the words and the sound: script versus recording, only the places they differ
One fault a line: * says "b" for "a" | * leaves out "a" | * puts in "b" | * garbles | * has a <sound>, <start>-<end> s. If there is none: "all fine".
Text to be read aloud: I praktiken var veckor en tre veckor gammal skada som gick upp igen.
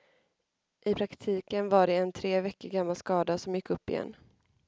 * says "det" for "veckor"